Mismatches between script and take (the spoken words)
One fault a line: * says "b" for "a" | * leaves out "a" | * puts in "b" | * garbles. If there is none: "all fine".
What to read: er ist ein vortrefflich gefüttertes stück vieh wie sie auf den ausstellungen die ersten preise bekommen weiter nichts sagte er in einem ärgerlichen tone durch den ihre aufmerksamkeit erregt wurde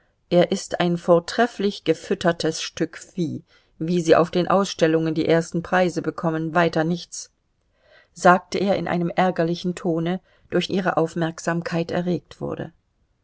* leaves out "den"